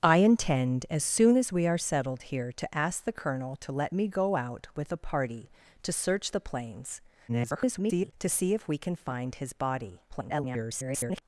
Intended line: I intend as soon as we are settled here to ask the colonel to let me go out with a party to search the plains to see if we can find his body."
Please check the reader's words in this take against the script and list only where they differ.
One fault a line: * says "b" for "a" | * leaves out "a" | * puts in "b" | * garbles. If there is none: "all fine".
* garbles
* garbles